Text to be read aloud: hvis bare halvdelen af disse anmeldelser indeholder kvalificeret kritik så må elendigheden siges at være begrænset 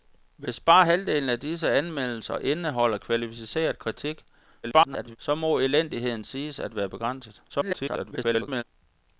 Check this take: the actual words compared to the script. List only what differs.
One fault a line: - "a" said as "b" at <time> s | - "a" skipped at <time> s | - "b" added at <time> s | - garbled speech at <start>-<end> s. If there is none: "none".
- garbled speech at 4.6-5.2 s
- garbled speech at 7.5-8.6 s